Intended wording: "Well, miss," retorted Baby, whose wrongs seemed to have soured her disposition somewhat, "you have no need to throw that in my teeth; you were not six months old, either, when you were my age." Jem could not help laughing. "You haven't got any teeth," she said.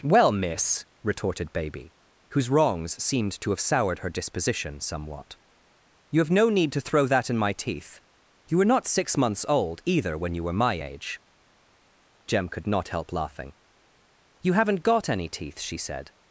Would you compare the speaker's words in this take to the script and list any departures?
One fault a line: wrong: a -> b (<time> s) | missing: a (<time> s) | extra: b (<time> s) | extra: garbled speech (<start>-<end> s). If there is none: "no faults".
no faults